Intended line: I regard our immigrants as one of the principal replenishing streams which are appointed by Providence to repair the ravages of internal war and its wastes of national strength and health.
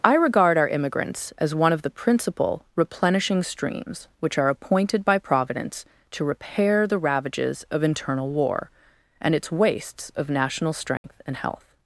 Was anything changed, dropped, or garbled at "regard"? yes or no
no